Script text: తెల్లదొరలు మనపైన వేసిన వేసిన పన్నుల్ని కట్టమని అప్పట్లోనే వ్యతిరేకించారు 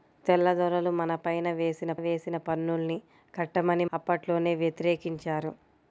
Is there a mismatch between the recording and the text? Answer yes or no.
no